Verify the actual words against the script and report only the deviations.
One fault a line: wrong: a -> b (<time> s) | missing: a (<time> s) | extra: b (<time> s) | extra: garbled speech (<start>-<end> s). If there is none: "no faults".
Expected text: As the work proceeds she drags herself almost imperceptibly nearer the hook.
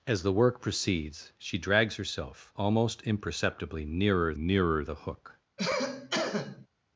extra: nearer (4.3 s)